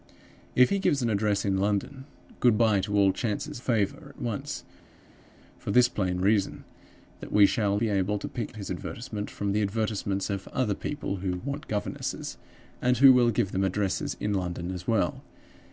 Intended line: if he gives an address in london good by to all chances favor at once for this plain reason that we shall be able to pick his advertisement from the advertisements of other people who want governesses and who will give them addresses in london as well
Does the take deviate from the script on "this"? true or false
false